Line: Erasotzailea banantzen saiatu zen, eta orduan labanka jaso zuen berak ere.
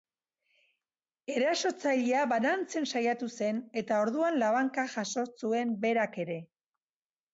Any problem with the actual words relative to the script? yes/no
no